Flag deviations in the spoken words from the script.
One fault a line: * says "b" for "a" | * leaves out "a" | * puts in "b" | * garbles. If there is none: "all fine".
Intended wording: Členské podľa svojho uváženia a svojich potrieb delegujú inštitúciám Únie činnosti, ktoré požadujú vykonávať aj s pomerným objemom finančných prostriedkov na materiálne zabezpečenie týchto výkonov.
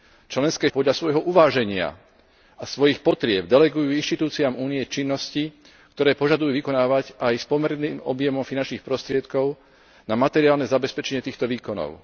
all fine